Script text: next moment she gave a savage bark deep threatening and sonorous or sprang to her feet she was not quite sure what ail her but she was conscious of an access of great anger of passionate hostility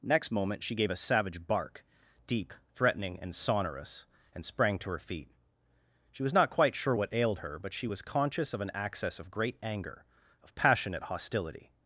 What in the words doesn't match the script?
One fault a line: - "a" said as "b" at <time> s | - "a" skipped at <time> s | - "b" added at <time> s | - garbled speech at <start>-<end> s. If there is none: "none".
- "or" said as "and" at 4.3 s
- "ail" said as "ailed" at 7.1 s